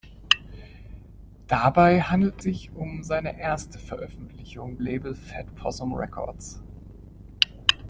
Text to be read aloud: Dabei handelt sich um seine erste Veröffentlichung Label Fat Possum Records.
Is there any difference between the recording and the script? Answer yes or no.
no